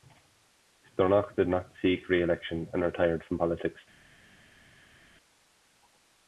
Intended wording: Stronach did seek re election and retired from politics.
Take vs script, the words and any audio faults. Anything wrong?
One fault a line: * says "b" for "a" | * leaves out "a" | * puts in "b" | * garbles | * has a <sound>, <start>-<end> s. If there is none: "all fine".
* puts in "not"